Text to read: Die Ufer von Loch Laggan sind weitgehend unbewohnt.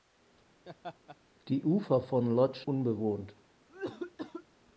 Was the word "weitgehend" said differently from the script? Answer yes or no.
yes